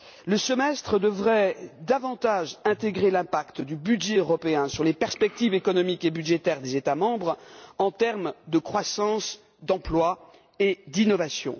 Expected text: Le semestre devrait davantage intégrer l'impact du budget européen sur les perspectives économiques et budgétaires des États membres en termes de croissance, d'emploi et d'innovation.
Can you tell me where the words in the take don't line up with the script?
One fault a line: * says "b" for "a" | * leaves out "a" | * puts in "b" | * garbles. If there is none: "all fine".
all fine